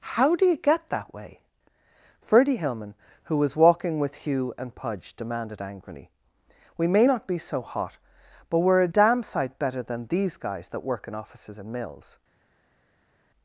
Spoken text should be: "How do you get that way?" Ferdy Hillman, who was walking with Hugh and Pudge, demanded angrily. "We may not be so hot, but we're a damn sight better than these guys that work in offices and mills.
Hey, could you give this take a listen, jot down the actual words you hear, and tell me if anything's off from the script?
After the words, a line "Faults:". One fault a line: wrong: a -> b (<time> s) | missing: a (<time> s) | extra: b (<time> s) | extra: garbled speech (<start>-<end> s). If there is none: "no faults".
"How do you get that way?" Ferdy Hillman, who was walking with Hugh and Pudge, demanded angrily. "We may not be so hot, but we're a damn sight better than these guys that work in offices and mills.
Faults:
no faults